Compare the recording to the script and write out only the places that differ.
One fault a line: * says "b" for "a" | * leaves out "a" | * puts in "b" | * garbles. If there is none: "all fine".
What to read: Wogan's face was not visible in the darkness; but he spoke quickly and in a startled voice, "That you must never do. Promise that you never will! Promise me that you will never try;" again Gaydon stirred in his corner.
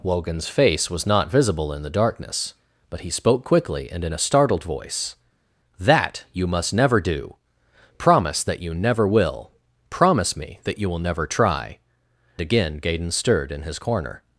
all fine